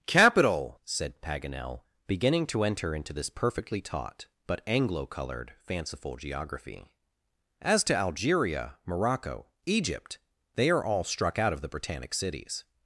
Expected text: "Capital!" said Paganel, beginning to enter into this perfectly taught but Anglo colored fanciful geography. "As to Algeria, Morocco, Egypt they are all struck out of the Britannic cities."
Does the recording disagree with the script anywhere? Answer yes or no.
no